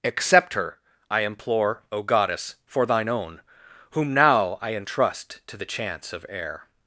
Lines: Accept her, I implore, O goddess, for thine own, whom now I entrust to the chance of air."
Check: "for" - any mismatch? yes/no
no